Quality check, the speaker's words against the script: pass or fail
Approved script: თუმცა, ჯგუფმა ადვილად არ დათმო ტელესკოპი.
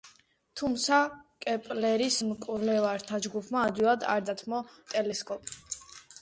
fail